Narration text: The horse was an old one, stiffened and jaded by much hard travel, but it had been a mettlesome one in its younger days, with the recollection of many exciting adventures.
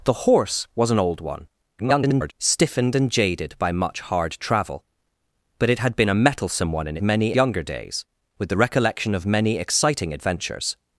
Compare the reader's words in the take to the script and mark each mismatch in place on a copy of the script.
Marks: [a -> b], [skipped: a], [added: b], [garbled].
The horse was an old one, [garbled] stiffened and jaded by much hard travel, but it had been a mettlesome one in [its -> many] younger days, with the recollection of many exciting adventures.